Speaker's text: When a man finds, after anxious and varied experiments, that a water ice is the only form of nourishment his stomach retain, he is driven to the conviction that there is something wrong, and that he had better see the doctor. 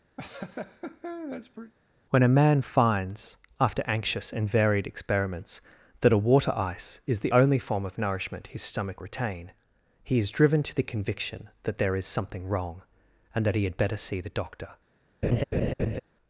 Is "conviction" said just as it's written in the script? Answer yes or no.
yes